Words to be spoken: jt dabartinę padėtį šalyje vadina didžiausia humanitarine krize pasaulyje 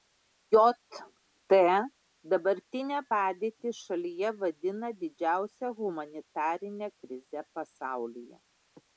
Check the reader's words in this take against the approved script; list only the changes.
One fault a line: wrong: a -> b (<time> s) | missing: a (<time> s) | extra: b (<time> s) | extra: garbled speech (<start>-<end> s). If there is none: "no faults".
no faults